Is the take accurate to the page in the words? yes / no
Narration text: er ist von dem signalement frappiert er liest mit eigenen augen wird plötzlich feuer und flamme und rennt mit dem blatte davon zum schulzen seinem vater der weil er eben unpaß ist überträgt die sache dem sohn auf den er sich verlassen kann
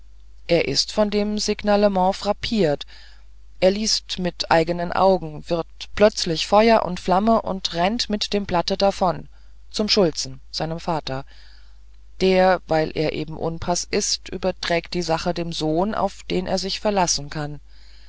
yes